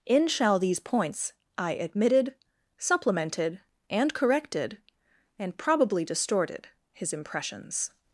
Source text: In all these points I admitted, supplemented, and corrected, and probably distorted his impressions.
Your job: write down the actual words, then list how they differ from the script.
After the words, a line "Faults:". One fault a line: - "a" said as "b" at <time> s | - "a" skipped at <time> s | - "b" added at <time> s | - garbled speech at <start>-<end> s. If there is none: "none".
In shall these points I admitted, supplemented, and corrected, and probably distorted his impressions.
Faults:
- "all" said as "shall" at 0.3 s